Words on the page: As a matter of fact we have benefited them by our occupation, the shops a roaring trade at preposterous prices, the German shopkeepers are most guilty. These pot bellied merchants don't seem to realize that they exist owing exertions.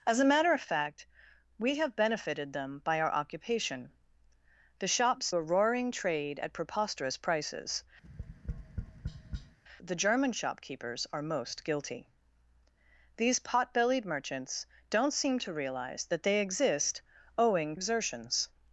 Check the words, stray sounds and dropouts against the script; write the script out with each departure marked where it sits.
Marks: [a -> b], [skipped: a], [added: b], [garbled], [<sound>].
As a matter of fact we have benefited them by our occupation, the shops a roaring trade at preposterous prices, [tap] the German shopkeepers are most guilty. These pot bellied merchants don't seem to realize that they exist owing exertions.